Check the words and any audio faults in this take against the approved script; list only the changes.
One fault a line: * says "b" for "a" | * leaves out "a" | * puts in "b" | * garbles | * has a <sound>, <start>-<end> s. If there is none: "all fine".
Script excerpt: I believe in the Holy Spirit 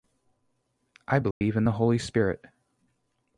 * has a dropout, 1.3-1.4 s